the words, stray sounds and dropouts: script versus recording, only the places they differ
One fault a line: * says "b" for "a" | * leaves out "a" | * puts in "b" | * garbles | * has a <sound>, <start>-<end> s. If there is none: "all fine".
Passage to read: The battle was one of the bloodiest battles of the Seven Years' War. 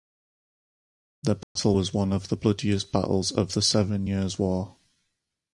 * has a dropout, 1.4-1.6 s